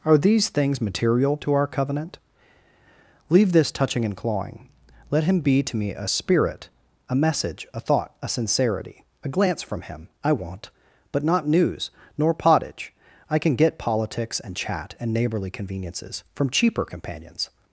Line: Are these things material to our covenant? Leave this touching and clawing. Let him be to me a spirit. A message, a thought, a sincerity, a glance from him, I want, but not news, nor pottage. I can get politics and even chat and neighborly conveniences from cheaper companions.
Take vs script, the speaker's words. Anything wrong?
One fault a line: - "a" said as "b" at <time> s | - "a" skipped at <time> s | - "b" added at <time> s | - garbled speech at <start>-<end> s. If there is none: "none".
- "even" skipped at 14.5 s